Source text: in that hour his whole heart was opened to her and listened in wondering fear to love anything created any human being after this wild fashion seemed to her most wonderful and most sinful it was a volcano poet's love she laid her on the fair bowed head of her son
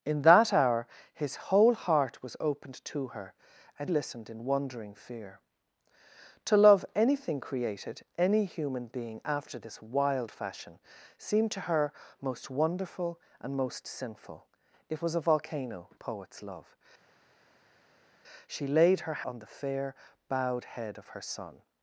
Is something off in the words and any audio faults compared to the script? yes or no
no